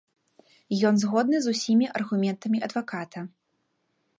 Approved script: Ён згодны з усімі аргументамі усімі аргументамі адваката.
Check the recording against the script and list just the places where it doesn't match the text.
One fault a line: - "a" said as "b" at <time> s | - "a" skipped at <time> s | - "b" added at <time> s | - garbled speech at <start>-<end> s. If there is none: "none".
- "усімі аргументамі" skipped at 2.6 s